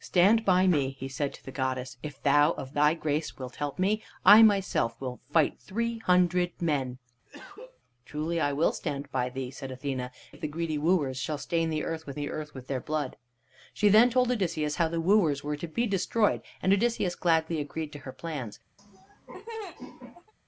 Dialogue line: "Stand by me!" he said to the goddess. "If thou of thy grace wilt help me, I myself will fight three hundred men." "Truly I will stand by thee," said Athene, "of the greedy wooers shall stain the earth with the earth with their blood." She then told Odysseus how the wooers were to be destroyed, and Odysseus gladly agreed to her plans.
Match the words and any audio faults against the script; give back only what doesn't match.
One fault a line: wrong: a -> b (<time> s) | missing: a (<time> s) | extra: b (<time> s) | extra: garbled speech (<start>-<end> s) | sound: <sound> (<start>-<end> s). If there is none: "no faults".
sound: cough (7.3-7.8 s)
sound: laugh (18.8-20.3 s)